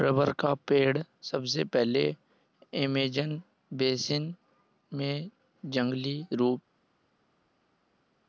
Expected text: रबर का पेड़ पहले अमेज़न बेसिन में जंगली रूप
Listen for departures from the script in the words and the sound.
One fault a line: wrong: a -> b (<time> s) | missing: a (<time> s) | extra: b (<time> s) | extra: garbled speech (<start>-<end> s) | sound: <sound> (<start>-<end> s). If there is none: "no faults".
extra: सबसे (1.2 s)